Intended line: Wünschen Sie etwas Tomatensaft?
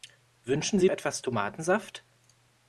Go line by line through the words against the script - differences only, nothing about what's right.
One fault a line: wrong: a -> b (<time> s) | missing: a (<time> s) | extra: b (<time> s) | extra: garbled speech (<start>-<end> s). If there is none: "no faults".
no faults